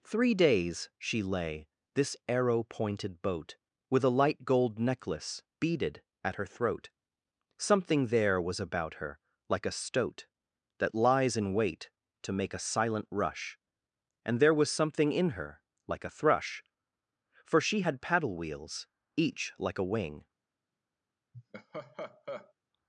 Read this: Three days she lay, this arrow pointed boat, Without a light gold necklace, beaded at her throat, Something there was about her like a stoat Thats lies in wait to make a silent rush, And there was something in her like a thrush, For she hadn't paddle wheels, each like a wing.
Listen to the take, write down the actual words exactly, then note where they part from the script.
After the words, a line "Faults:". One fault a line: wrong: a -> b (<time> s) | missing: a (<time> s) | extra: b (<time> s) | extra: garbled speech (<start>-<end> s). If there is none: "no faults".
Three days she lay, this arrow pointed boat, With a light gold necklace, beaded at her throat, Something there was about her like a stoat That lies in wait to make a silent rush, And there was something in her like a thrush, For she had paddle wheels, each like a wing.
Faults:
wrong: Without -> With (3.9 s)
wrong: Thats -> That (10.8 s)
wrong: hadn't -> had (17.8 s)